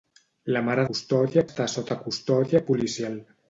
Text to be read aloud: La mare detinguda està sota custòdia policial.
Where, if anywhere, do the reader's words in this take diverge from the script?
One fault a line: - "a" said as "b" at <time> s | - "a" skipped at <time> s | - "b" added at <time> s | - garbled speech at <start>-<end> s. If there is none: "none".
- "detinguda" said as "custòdia" at 0.9 s